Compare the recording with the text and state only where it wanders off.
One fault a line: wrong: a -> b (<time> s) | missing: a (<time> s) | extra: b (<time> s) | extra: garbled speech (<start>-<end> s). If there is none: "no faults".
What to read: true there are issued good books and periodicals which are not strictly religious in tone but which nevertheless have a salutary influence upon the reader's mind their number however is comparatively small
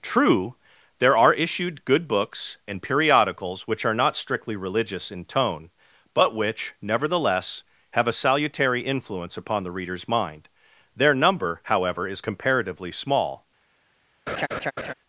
no faults